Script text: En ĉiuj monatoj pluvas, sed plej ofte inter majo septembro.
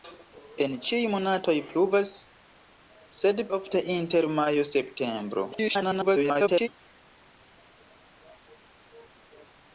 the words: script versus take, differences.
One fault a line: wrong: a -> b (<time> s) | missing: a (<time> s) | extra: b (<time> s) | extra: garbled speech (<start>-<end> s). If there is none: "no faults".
missing: plej (3.4 s)
extra: garbled speech (5.5-6.7 s)